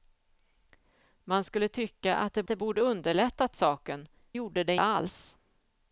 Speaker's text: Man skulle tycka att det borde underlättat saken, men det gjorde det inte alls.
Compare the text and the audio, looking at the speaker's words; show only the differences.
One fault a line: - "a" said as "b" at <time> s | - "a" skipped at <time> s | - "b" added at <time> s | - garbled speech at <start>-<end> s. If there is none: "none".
- "det" added at 2.5 s
- "men det" skipped at 4.1 s
- "inte" skipped at 4.8 s